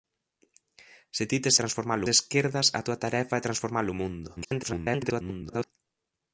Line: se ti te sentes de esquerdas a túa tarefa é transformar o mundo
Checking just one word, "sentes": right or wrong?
wrong